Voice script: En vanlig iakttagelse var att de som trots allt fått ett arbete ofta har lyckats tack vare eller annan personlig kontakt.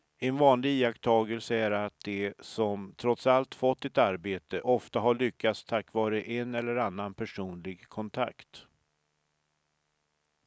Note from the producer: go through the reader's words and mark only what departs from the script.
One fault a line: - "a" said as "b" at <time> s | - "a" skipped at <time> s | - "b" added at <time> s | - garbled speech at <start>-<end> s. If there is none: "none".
- "var" said as "är" at 1.6 s
- "en" added at 6.2 s